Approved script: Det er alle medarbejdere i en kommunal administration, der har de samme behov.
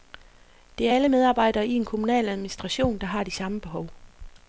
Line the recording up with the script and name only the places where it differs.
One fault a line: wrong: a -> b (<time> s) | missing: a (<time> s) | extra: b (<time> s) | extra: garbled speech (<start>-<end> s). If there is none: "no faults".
no faults